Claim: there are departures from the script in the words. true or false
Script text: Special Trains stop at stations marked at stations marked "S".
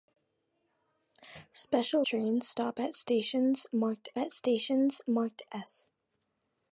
false